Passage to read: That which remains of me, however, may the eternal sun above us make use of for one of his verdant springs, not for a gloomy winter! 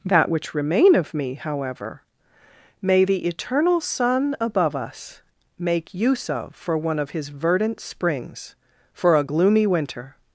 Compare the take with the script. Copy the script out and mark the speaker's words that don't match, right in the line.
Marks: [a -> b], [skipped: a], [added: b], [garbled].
That which [remains -> remain] of me, however, may the eternal sun above us make use of for one of his verdant springs, [skipped: not] for a gloomy winter!